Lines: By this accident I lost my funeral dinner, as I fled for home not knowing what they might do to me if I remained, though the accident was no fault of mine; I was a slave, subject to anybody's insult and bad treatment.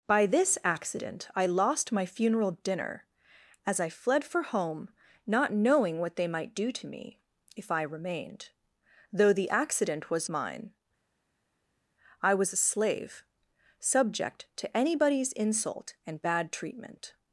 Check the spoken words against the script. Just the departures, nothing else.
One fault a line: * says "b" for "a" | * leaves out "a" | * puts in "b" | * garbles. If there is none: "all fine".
* leaves out "no fault of"